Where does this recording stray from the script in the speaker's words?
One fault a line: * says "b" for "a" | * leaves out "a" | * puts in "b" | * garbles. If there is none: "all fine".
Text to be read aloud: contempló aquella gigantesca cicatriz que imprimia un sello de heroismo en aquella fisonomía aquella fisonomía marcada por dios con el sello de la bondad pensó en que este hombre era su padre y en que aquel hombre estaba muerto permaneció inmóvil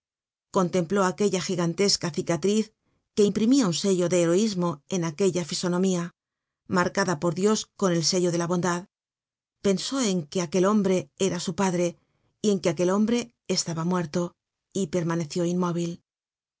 * leaves out "aquella fisonomía"
* says "aquel" for "este"
* puts in "y"